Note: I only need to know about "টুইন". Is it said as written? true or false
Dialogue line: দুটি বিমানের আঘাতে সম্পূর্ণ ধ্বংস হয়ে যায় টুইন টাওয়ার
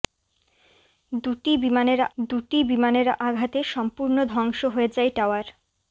false